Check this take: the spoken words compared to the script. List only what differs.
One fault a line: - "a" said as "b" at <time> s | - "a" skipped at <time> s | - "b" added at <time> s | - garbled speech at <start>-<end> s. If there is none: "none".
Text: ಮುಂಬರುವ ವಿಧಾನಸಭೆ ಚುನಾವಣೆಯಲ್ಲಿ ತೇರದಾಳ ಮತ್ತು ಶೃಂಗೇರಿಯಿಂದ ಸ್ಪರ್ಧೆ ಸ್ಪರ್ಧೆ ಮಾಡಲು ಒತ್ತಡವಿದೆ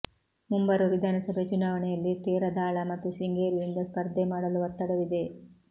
- "ಸ್ಪರ್ಧೆ" skipped at 4.3 s